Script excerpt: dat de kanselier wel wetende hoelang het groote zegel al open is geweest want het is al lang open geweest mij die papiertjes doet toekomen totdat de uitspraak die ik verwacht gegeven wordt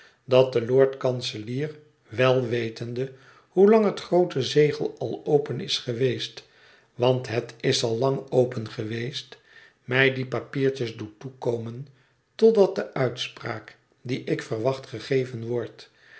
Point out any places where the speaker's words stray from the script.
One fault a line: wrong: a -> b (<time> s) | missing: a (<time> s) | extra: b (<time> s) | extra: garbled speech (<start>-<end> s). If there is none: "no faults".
extra: lord (0.7 s)